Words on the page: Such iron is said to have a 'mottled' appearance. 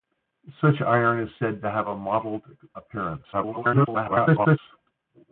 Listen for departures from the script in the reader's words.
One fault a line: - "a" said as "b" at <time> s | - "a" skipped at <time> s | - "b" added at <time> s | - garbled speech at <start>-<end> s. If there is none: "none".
- garbled speech at 3.3-4.6 s